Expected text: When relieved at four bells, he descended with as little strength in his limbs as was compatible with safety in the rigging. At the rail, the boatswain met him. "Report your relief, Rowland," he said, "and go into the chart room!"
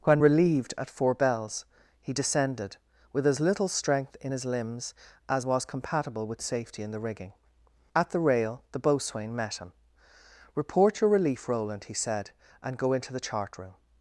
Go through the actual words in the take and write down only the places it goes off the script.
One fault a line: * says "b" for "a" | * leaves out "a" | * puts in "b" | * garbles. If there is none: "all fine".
all fine